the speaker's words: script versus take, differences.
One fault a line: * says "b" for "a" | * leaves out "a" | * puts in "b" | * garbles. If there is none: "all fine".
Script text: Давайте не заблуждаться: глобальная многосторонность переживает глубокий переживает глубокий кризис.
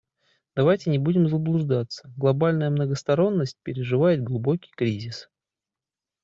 * puts in "будем"
* leaves out "переживает глубокий"